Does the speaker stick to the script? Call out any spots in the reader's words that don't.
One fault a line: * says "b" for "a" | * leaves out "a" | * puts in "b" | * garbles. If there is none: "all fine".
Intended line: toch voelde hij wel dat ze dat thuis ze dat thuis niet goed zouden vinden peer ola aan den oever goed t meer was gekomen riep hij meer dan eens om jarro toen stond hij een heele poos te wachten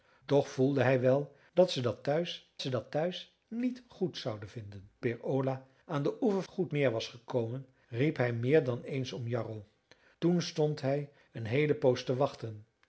all fine